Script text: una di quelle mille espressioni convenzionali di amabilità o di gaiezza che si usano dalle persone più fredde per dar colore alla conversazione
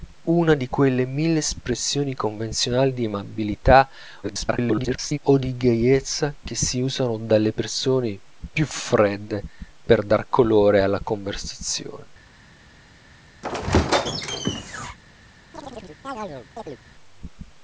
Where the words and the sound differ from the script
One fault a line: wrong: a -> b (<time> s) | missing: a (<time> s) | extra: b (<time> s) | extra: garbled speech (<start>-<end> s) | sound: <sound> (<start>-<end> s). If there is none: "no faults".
extra: garbled speech (4.2-5.2 s)
sound: squeak (13.4-15.0 s)
sound: chirp (15.5-16.8 s)